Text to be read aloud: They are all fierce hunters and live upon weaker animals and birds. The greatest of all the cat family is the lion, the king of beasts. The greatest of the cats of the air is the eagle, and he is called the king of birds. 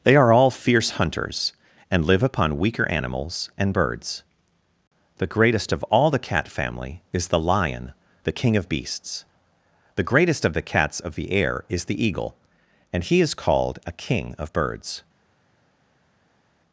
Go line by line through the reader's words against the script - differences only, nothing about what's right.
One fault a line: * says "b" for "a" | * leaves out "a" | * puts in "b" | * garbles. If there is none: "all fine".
* says "a" for "the"